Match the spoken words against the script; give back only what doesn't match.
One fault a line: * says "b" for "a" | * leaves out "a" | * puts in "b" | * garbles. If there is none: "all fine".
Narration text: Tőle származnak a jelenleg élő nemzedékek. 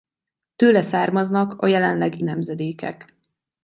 * leaves out "élő"